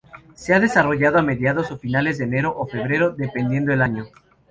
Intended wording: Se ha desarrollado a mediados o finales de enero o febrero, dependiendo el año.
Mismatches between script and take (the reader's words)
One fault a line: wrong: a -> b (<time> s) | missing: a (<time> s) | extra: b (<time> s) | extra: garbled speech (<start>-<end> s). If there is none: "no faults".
no faults